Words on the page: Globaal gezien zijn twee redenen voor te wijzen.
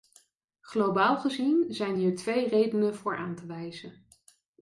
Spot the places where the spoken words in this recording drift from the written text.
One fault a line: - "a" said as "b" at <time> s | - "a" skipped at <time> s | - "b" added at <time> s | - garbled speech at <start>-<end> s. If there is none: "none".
- "hier" added at 1.9 s
- "aan" added at 3.1 s